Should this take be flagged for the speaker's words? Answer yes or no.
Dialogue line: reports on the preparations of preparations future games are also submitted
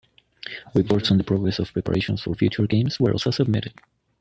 yes